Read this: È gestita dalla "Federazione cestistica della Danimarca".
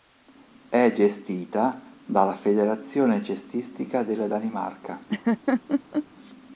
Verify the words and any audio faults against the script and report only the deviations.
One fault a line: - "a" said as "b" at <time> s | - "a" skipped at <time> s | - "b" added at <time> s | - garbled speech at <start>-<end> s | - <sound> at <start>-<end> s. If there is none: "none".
- laugh at 5.1-6.1 s